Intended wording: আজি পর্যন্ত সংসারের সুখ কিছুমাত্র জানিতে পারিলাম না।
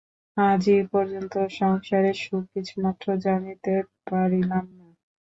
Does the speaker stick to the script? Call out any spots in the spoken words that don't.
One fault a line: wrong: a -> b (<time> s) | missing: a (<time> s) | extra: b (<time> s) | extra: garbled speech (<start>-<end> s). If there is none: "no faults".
no faults